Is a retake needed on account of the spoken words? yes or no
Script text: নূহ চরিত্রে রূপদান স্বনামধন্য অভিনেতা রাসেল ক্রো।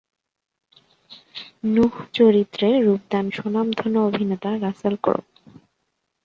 no